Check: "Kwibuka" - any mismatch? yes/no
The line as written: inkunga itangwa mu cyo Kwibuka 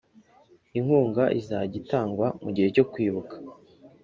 no